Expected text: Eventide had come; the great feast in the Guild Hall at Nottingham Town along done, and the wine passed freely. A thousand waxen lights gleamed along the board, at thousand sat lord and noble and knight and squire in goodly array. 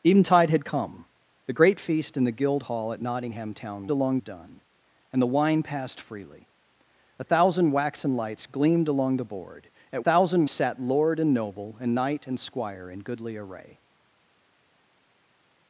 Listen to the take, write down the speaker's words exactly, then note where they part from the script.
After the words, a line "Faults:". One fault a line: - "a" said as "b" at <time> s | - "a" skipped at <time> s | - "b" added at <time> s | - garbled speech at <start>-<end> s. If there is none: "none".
Eventide had come; the great feast in the Guild Hall at Nottingham Town along done, and the wine passed freely. A thousand waxen lights gleamed along the board, at thousand sat lord and noble and knight and squire in goodly array.
Faults:
none